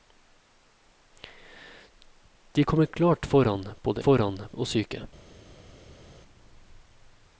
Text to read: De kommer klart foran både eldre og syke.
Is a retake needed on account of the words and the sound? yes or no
yes